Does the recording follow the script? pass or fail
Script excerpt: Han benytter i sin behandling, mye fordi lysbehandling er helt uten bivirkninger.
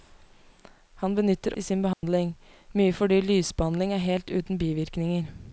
pass